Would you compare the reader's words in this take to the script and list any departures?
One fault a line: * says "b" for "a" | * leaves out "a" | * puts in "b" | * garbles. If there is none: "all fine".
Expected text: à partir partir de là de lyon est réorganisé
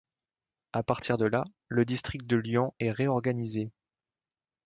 * leaves out "partir"
* puts in "le district"